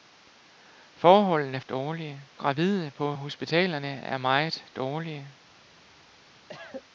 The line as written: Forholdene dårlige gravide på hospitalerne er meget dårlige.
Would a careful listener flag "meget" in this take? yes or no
no